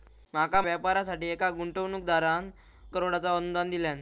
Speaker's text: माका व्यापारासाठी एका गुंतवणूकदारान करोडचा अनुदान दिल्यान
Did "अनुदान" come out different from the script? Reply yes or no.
no